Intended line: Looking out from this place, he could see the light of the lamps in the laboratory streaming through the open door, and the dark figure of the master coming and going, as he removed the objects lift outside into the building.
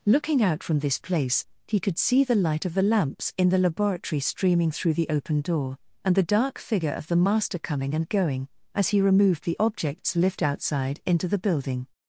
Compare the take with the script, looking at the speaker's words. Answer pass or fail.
pass